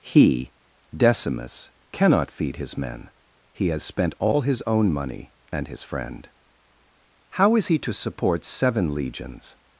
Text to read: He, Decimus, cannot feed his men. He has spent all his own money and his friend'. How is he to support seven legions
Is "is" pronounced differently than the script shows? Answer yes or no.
no